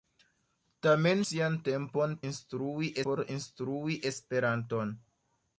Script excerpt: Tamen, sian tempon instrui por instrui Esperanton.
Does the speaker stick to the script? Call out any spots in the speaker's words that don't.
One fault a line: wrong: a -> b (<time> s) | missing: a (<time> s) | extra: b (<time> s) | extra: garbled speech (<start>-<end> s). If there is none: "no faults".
no faults